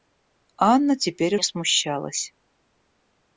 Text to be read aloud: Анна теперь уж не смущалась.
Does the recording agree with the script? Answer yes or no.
no